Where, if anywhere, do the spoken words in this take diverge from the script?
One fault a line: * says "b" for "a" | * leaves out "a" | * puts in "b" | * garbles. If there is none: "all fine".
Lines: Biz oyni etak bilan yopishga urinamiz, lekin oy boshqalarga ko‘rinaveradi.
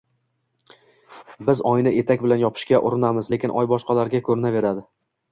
all fine